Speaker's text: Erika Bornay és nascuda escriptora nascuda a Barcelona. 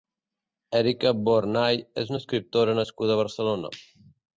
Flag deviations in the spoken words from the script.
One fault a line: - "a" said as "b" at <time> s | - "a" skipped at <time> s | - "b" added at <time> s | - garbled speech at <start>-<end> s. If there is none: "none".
- "nascuda" said as "una" at 2.1 s